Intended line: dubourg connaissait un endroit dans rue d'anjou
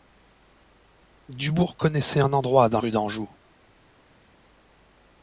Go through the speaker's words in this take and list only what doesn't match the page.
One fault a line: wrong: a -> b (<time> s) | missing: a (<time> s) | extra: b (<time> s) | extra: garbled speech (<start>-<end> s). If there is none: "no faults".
no faults